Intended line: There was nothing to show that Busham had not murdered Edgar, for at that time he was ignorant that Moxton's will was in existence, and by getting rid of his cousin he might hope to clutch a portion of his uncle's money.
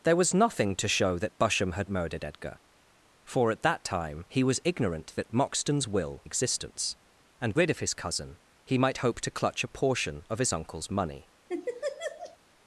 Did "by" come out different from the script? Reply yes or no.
yes